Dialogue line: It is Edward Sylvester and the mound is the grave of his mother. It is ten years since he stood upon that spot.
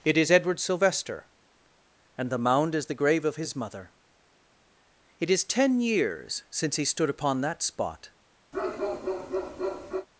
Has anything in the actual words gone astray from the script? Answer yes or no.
no